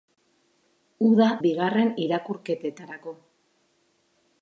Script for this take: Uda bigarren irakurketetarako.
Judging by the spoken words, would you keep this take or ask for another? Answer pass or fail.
pass